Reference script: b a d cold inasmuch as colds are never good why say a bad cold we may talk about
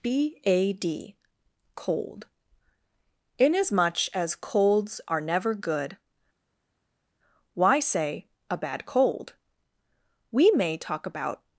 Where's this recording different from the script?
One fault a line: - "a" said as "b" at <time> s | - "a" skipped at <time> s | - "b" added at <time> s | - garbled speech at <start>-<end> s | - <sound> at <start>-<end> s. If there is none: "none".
none